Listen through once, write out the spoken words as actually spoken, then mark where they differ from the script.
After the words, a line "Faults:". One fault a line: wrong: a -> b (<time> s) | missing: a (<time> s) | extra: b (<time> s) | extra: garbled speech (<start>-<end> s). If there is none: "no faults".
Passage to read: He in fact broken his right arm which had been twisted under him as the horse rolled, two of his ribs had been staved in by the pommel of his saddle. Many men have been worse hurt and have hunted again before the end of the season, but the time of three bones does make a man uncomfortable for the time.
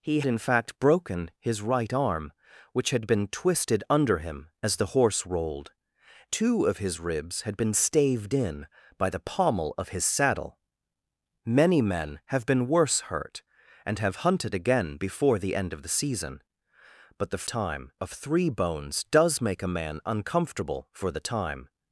He in fact broken his right arm which had been twisted under him as the horse rolled, two of his ribs had been staved in by the pommel of his saddle. Many men have been worse hurt and have hunted again before the end of the season, but the time of three bones does make a man uncomfortable for the time.
Faults:
no faults